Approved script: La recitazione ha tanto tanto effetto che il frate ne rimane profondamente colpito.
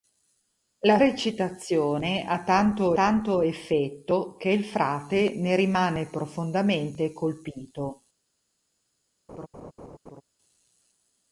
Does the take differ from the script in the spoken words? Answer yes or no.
no